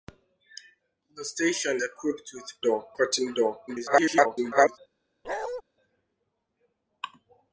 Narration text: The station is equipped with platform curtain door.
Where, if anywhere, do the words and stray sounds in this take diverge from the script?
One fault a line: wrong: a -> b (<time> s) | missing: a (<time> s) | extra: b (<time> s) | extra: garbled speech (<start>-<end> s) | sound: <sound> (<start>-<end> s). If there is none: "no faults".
missing: is (1.8 s)
wrong: platform -> door (2.6 s)
extra: garbled speech (3.7-4.8 s)
sound: bark (5.2-5.6 s)